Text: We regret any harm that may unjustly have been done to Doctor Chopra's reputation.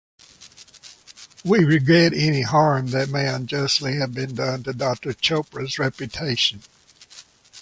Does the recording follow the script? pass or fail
pass